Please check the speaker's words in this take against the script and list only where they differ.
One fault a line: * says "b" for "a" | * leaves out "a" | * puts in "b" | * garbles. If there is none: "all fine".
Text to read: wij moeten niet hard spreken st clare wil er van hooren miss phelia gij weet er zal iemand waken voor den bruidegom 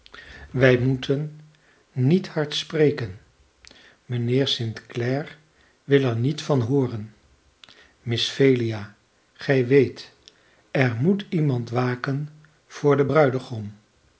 * puts in "mijnheer"
* puts in "niet"
* says "moet" for "zal"